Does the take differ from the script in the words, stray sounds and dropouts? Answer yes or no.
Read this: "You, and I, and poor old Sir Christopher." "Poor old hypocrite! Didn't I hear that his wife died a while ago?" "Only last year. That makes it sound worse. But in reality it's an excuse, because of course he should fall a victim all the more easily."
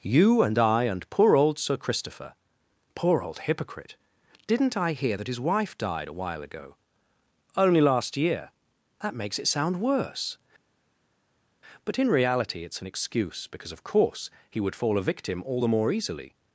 yes